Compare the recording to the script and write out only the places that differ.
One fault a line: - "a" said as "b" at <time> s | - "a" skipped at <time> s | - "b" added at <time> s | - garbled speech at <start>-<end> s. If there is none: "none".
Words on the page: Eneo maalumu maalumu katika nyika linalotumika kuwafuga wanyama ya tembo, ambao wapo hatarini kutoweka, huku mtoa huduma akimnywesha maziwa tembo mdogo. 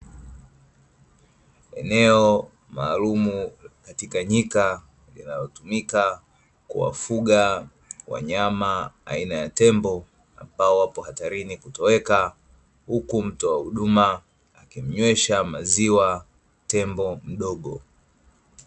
- "maalumu" skipped at 3.5 s
- "aina" added at 9.1 s